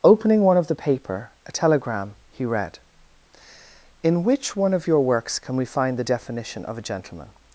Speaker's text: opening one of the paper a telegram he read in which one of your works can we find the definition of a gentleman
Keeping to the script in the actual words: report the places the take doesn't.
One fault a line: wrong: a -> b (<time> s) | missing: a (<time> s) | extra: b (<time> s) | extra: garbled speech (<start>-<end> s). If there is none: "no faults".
no faults